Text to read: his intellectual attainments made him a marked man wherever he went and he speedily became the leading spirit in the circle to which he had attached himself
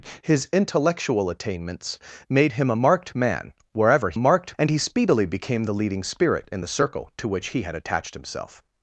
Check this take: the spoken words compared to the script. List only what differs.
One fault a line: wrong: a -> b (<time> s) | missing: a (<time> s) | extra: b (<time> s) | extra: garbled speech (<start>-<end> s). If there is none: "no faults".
wrong: went -> marked (4.2 s)